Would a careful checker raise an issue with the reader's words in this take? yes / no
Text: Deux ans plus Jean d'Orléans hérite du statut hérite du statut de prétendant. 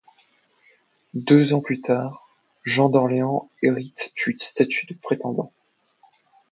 yes